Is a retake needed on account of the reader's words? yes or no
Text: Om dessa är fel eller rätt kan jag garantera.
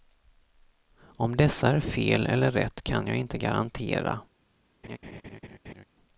yes